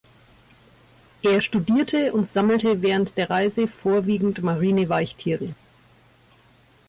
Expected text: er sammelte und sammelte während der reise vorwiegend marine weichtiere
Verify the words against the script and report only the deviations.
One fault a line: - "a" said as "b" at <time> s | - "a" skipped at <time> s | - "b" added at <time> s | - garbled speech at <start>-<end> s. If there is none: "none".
- "sammelte" said as "studierte" at 1.4 s